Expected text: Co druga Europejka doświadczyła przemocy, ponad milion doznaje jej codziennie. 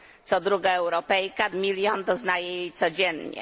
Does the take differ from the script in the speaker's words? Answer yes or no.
yes